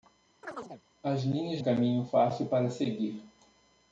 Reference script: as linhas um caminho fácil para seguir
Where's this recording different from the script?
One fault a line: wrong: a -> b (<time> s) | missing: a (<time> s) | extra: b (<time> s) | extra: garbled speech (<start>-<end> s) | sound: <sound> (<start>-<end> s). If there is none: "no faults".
sound: chirp (0.4-0.8 s)